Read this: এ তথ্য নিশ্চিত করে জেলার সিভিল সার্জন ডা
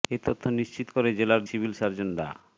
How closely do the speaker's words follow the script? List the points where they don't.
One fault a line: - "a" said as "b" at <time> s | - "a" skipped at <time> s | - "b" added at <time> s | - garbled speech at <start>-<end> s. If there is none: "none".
none